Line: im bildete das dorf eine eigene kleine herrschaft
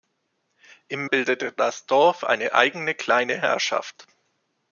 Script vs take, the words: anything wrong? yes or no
no